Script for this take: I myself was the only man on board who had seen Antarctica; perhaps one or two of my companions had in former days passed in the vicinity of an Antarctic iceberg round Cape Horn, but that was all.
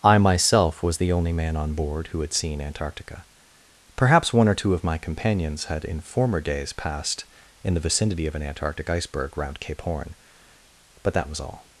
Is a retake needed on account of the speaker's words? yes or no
no